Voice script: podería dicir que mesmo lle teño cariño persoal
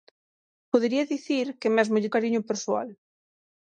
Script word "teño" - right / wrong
wrong